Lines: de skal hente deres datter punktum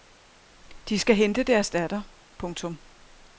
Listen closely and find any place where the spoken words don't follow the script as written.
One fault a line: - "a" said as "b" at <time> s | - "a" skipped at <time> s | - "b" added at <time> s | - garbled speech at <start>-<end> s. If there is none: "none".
none